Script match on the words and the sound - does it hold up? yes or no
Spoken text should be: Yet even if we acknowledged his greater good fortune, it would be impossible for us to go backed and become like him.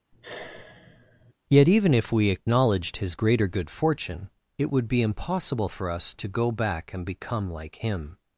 no